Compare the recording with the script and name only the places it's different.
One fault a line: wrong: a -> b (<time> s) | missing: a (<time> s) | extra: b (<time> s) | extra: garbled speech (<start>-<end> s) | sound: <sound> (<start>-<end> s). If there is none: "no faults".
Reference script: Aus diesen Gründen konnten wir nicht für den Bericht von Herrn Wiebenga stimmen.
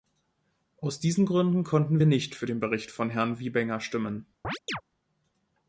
sound: chirp (4.4-4.8 s)